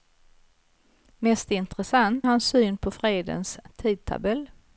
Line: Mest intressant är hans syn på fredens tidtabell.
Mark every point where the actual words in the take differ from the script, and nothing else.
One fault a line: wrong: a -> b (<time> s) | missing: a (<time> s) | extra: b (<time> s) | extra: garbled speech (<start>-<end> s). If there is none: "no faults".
missing: är (2.3 s)